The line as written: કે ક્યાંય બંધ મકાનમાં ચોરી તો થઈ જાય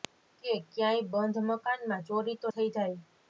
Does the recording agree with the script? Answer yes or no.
yes